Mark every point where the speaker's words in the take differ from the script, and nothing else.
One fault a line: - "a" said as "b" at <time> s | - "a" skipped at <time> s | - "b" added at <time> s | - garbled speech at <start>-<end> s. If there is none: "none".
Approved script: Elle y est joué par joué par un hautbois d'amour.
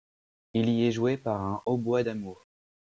- "Elle" said as "Il" at 0.6 s
- "joué par" skipped at 1.4 s